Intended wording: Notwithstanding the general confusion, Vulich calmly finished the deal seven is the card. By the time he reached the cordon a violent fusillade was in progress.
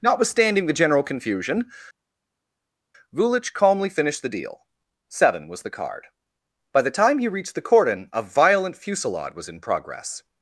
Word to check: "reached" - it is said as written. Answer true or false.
true